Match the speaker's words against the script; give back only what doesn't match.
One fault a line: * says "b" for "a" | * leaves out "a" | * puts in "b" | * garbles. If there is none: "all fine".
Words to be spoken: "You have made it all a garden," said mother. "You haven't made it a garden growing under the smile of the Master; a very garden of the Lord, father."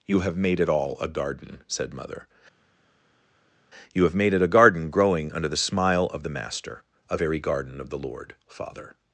* says "have" for "haven't"